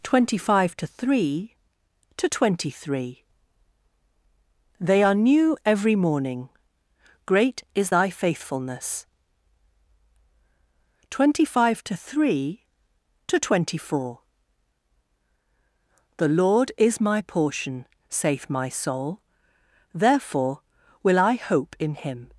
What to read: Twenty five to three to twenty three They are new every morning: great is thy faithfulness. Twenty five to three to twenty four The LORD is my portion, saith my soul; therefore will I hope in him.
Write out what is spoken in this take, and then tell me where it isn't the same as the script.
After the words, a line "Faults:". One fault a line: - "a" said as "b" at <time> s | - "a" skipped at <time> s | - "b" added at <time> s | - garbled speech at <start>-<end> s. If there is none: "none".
Twenty five to three to twenty three They are new every morning: great is thy faithfulness. Twenty five to three to twenty four The LORD is my portion, saith my soul; therefore will I hope in him.
Faults:
none